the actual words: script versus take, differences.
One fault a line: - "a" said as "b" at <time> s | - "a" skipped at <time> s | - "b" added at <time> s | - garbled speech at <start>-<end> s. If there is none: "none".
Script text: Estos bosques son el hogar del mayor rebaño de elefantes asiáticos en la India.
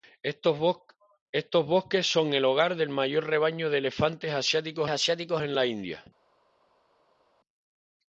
- "asiáticos" added at 4.9 s